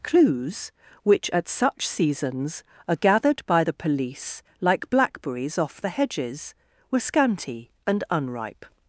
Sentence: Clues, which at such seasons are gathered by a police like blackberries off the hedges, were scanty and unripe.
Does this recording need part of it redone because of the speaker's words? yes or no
yes